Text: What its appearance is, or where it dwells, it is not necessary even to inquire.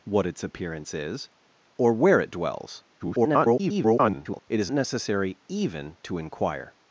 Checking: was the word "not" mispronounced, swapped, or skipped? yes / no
yes